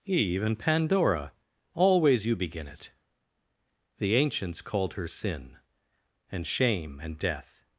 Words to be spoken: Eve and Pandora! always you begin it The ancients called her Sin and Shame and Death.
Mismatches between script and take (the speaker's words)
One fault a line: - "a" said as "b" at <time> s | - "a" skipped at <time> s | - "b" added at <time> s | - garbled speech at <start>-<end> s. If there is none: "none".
none